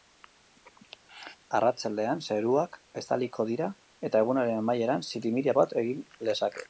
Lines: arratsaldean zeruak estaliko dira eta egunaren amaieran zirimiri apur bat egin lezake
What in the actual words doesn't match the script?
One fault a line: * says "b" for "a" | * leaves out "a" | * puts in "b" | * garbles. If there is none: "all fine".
* leaves out "apur"